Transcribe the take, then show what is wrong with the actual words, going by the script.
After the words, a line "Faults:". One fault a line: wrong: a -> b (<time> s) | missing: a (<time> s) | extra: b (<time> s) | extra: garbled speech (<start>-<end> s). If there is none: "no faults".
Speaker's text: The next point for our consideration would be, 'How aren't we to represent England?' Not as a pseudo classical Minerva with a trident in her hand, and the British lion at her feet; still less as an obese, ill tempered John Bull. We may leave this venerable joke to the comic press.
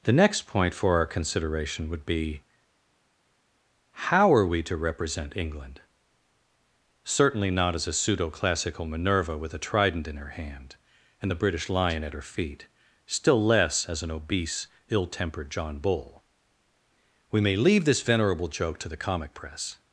The next point for our consideration would be, 'How are we to represent England?' Certainly not as a pseudo classical Minerva with a trident in her hand, and the British lion at her feet; still less as an obese, ill tempered John Bull. We may leave this venerable joke to the comic press.
Faults:
wrong: aren't -> are (4.3 s)
extra: Certainly (7.0 s)